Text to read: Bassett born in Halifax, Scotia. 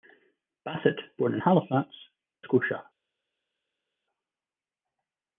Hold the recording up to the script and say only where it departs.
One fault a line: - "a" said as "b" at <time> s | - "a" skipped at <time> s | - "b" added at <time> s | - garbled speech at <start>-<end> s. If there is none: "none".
none